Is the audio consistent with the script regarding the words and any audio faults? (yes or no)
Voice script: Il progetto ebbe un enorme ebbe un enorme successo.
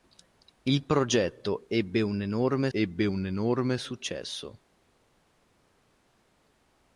yes